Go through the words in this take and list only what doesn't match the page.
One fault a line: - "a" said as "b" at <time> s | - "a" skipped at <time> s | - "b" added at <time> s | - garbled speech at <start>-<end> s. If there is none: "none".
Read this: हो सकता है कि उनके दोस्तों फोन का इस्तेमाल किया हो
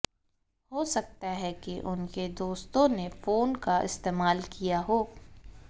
- "ने" added at 2.9 s